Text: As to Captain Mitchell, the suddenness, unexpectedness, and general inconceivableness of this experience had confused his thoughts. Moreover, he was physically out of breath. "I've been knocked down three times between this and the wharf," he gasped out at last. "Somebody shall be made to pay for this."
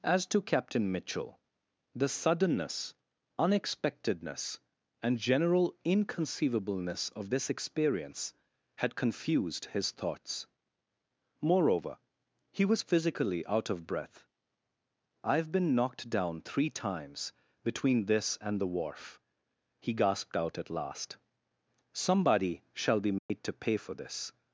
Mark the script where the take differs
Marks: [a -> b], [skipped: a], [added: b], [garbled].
As to Captain Mitchell, the suddenness, unexpectedness, and general inconceivableness of this experience had confused his thoughts. Moreover, he was physically out of breath. "I've been knocked down three times between this and the wharf," he gasped out at last. "Somebody shall be made to pay for this."